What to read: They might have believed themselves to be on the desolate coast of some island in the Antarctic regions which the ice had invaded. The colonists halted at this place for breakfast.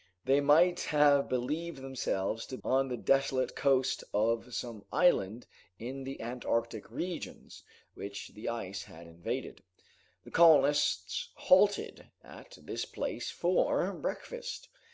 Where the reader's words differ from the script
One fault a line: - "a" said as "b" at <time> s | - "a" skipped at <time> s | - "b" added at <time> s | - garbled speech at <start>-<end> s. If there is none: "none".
- "be" skipped at 2.6 s